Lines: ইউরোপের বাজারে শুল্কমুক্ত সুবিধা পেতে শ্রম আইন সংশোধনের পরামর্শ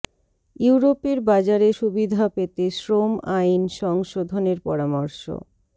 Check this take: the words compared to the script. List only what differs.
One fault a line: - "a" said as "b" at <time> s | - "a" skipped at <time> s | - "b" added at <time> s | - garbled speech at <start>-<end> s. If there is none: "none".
- "শুল্কমুক্ত" skipped at 1.7 s